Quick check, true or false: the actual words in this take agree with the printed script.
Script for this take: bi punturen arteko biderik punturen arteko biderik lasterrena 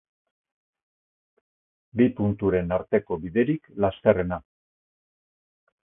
false